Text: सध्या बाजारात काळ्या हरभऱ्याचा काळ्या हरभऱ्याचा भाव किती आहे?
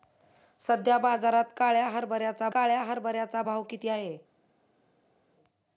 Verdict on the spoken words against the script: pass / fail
pass